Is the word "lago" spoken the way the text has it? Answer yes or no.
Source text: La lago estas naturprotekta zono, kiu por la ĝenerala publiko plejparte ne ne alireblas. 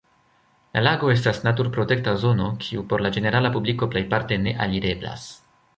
yes